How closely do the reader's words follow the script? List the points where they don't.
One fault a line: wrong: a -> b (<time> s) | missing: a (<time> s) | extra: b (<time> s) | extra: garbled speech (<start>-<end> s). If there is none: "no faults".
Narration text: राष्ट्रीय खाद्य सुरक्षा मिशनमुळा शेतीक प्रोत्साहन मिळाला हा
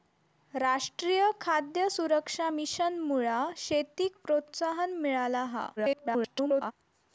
extra: garbled speech (5.8-6.7 s)